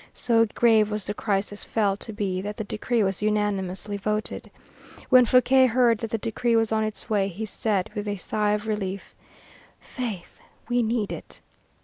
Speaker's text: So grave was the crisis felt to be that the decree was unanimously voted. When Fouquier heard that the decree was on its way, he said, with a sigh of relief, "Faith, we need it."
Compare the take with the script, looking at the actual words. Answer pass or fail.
pass